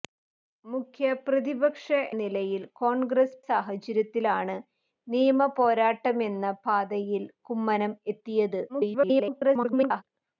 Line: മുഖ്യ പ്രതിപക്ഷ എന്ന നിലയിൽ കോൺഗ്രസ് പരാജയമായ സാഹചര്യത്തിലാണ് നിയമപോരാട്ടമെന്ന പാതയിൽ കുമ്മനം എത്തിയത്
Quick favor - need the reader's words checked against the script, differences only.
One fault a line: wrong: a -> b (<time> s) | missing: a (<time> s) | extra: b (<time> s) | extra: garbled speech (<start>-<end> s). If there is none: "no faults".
missing: എന്ന (1.9 s)
missing: പരാജയമായ (3.4 s)
extra: garbled speech (8.7-10.0 s)